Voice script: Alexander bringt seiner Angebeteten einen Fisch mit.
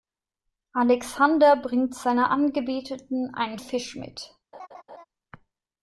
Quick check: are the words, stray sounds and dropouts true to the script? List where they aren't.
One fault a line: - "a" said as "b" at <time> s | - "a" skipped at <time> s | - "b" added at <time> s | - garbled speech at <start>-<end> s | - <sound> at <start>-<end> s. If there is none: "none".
- laugh at 4.5-5.0 s